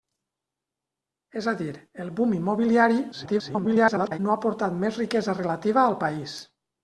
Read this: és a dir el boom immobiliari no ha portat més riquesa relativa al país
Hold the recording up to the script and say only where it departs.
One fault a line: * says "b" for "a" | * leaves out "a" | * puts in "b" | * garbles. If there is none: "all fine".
* garbles